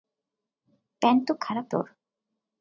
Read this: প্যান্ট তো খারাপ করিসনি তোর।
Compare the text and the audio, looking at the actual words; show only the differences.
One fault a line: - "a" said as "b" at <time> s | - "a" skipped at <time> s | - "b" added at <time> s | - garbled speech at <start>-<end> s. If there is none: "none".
- "করিসনি" skipped at 1.6 s